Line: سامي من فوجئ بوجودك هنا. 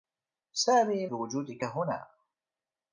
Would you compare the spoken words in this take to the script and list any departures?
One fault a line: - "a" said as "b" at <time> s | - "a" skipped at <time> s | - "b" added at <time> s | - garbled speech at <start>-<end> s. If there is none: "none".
- "من فوجئ" skipped at 1.1 s